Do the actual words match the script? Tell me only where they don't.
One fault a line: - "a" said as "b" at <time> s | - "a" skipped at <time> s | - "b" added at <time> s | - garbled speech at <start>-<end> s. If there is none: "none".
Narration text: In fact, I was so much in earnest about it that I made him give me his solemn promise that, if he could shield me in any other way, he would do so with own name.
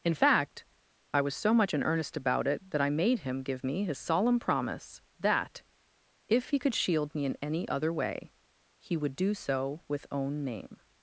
none